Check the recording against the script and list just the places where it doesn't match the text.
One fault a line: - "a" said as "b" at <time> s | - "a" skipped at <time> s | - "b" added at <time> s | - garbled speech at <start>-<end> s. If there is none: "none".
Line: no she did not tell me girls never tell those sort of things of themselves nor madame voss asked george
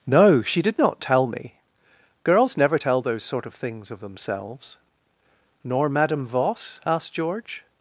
none